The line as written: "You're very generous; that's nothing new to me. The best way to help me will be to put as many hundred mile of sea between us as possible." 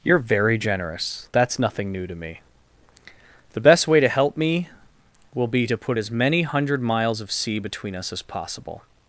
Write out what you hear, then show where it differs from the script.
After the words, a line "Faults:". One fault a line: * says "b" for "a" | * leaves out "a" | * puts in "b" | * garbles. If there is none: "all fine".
"You're very generous; that's nothing new to me. The best way to help me will be to put as many hundred miles of sea between us as possible."
Faults:
* says "miles" for "mile"